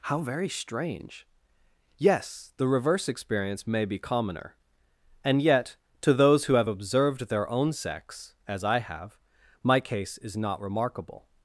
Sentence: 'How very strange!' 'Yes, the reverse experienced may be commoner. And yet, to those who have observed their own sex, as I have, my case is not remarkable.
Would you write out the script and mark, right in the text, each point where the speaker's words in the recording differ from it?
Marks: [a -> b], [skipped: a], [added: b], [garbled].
'How very strange!' 'Yes, the reverse [experienced -> experience] may be commoner. And yet, to those who have observed their own sex, as I have, my case is not remarkable.